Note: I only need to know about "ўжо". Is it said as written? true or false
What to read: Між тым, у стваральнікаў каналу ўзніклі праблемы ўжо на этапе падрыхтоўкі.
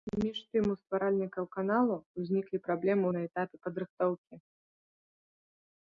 false